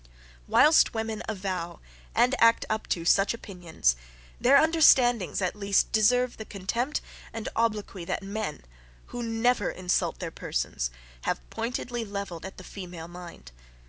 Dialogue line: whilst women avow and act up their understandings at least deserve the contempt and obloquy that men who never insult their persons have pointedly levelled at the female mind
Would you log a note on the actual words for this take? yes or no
yes